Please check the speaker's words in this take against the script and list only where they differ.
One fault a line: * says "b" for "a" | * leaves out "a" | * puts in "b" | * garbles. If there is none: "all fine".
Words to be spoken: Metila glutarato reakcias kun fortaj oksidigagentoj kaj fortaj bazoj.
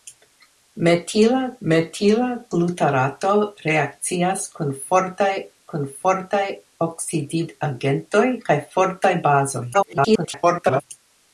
* puts in "metila"
* puts in "kun fortaj"
* garbles